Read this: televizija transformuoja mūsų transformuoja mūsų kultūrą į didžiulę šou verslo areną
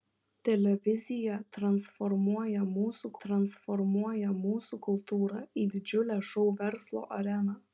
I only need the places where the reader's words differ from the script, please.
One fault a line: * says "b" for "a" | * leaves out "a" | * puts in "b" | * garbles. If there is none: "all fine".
all fine